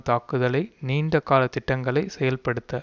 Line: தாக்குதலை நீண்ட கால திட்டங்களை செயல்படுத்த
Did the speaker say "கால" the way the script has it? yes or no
yes